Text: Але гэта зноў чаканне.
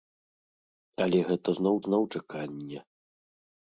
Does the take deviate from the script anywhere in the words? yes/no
yes